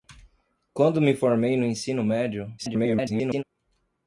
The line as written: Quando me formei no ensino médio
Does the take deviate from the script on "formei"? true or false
false